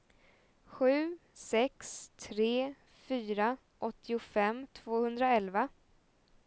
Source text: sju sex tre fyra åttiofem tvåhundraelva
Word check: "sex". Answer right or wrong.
right